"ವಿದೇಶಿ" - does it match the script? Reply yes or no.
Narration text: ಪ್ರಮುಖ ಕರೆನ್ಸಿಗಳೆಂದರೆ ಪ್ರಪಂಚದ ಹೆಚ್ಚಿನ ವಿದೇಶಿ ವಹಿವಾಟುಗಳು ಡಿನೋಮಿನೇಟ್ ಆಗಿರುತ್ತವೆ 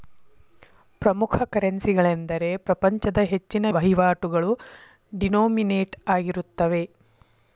no